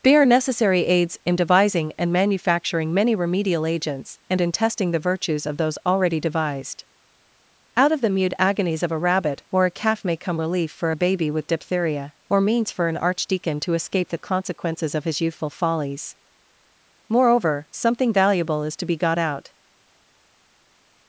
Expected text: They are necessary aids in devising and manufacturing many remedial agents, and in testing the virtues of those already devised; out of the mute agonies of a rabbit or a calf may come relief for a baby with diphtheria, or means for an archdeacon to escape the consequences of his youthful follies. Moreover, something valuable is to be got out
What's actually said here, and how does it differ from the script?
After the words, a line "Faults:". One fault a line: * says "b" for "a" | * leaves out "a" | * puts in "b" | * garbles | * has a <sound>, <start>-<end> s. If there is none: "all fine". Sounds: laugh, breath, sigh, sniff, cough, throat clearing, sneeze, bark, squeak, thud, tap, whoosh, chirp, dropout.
They are necessary aids in devising and manufacturing many remedial agents, and in testing the virtues of those already devised; out of the mute agonies of a rabbit or a calf may come relief for a baby with diphtheria, or means for an archdeacon to escape the consequences of his youthful follies. Moreover, something valuable is to be got out
Faults:
all fine